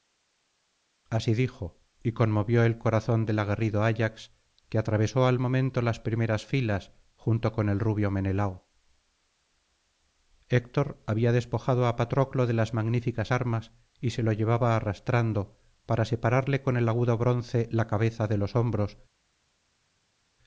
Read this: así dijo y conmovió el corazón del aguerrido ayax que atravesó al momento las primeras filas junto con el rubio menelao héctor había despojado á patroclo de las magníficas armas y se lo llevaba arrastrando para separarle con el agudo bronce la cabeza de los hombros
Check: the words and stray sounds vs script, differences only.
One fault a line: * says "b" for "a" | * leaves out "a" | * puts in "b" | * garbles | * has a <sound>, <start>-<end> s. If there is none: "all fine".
all fine